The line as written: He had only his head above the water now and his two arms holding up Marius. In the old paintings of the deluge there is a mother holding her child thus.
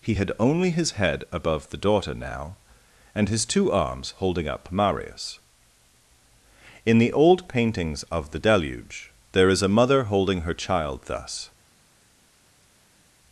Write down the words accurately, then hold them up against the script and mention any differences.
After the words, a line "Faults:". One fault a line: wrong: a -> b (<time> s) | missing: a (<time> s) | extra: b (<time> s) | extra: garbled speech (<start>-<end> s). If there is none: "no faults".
He had only his head above the daughter now and his two arms holding up Marius. In the old paintings of the deluge there is a mother holding her child thus.
Faults:
wrong: water -> daughter (1.8 s)